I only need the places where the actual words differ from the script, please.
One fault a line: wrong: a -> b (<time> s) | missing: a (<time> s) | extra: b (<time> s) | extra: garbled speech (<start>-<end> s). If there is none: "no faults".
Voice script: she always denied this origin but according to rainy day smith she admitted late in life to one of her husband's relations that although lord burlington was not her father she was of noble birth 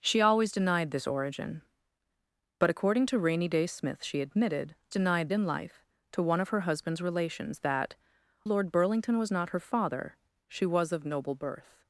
wrong: late -> denied (4.9 s)
missing: although (8.0 s)